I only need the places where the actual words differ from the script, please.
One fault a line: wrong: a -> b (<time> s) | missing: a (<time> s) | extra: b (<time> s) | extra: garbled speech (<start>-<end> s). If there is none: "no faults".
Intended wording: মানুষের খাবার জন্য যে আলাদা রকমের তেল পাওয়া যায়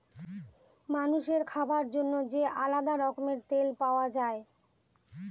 no faults